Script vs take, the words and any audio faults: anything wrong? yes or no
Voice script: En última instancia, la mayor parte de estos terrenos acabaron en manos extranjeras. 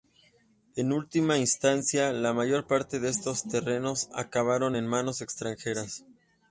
no